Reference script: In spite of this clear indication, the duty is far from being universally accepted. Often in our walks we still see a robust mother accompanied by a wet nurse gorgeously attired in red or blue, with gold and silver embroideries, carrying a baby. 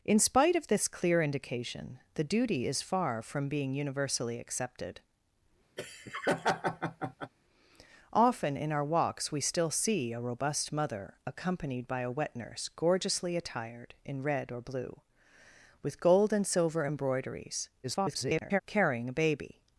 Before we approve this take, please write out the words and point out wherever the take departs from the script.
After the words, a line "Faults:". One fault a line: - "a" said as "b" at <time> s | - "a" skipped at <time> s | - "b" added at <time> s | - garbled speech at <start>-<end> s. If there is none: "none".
In spite of this clear indication, the duty is far from being universally accepted. Often in our walks we still see a robust mother accompanied by a wet nurse gorgeously attired in red or blue, with gold and silver embroideries, [garbled] carrying a baby.
Faults:
- garbled speech at 17.8-18.6 s